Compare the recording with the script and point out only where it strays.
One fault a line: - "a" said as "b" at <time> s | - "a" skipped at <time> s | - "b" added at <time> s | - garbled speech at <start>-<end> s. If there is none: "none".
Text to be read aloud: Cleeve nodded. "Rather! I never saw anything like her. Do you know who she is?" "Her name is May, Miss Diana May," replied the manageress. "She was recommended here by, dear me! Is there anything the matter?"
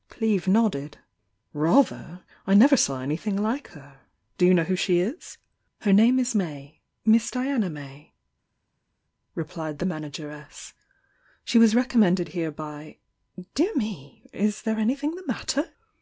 none